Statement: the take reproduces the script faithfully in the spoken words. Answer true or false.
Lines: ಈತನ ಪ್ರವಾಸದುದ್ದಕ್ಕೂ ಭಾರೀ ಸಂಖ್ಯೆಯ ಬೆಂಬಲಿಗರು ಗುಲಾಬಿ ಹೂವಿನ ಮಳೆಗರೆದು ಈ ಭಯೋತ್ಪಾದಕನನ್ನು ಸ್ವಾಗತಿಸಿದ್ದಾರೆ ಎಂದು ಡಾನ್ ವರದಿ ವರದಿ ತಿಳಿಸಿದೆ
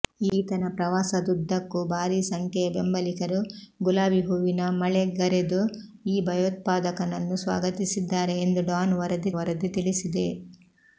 true